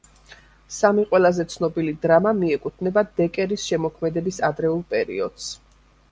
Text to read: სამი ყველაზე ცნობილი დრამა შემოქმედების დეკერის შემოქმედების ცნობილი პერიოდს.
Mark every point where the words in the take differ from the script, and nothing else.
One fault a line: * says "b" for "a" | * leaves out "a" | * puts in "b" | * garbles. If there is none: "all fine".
* says "მიეკუთვნება" for "შემოქმედების"
* says "ადრეულ" for "ცნობილი"